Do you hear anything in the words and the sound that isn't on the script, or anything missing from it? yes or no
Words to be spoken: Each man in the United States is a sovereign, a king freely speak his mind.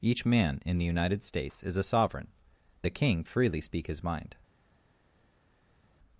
no